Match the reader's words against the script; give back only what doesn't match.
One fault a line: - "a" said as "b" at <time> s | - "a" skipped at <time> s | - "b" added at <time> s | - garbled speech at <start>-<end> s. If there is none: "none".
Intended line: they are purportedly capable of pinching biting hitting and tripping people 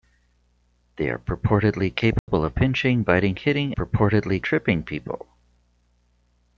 - "and" said as "purportedly" at 3.8 s